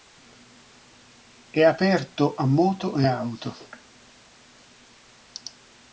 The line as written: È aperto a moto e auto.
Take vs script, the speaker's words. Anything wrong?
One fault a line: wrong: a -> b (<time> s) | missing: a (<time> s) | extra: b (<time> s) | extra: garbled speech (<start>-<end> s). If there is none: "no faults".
no faults